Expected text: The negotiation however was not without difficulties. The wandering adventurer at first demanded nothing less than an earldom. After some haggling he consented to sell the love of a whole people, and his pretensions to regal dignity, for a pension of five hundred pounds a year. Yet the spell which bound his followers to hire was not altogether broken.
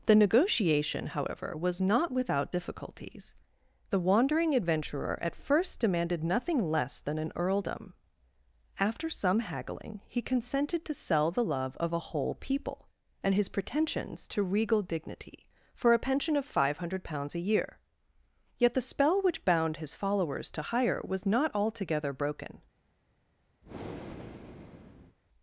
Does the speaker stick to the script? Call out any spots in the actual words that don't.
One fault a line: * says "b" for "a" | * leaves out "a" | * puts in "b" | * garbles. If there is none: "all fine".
all fine